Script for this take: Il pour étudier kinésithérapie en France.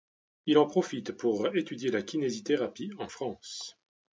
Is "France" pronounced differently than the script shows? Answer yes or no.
no